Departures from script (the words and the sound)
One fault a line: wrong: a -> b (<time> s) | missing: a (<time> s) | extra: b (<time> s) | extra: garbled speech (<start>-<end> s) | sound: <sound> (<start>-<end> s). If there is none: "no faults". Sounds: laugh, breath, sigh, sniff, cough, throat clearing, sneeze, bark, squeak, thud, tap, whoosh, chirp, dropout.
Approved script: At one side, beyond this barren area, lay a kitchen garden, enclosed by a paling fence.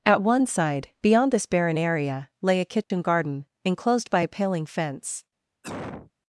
sound: dropout (2.8-2.9 s)
sound: cough (5.6-6.1 s)